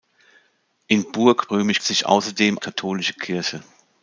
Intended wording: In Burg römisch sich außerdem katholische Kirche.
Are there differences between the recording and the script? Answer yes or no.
no